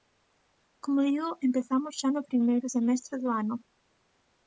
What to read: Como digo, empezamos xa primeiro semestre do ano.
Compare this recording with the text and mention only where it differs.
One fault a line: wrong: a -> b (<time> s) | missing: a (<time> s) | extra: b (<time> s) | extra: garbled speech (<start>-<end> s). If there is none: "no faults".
extra: no (2.1 s)